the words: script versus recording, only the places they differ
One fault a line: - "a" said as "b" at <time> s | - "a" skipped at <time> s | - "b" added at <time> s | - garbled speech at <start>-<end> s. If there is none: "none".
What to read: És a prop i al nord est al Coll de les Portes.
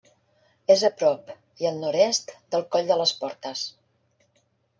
- "al" said as "del" at 2.6 s